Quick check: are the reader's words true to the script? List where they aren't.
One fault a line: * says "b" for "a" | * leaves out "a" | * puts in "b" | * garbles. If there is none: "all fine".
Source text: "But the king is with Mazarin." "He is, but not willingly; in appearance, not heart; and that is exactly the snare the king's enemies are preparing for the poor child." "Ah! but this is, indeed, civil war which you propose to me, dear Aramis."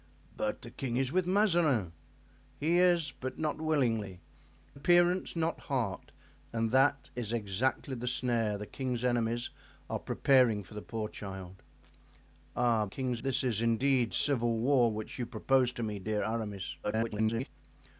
* leaves out "in"
* says "king's" for "but"
* garbles